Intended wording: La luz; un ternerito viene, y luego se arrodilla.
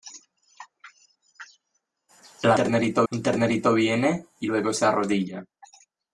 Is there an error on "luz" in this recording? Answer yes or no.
yes